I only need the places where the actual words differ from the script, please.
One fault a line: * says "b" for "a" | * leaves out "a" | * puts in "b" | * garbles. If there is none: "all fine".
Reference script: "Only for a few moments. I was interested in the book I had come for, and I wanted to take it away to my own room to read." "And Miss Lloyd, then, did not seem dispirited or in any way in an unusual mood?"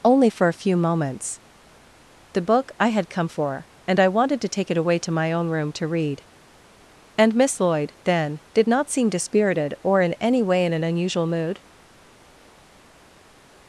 * leaves out "I was interested in"